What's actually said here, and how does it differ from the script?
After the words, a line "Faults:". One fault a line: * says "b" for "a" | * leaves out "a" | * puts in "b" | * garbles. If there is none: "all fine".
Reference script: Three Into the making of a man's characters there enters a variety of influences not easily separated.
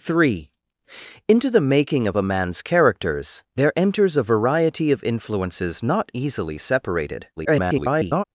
Three Into the making of a man's characters there enters a variety of influences not easily separated. [garbled]
Faults:
* garbles